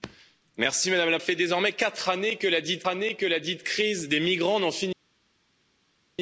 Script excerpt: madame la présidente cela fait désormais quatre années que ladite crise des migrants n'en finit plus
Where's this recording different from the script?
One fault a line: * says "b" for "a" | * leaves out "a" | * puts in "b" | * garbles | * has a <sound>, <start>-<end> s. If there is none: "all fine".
* leaves out "présidente cela"
* puts in "années que ladite"